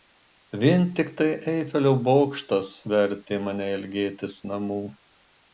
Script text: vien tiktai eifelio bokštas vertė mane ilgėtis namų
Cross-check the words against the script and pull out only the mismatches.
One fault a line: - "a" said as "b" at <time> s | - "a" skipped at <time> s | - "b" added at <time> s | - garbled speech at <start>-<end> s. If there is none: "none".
none